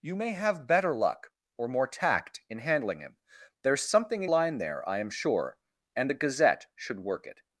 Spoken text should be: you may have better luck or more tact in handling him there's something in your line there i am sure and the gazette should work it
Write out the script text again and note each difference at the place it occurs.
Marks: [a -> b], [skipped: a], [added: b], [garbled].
you may have better luck or more tact in handling him there's something in [skipped: your] line there i am sure and the gazette should work it